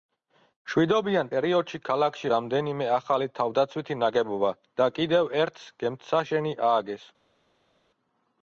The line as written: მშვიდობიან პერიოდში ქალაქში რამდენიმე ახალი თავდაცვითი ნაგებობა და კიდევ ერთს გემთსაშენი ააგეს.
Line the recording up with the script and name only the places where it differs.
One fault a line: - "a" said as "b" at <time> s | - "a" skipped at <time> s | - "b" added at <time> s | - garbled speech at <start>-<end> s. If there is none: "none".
none